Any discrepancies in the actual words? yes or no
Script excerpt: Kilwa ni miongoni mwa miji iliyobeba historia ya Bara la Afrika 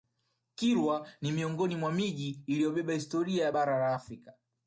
no